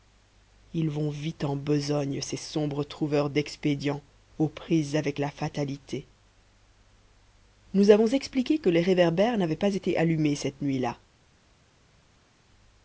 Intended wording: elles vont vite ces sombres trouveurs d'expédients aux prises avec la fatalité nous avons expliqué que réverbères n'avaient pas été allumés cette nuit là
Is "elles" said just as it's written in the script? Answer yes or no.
no